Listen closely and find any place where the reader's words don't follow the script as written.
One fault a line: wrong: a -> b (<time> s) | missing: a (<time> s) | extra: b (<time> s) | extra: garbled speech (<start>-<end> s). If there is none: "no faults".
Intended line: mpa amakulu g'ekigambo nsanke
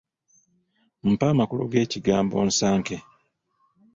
no faults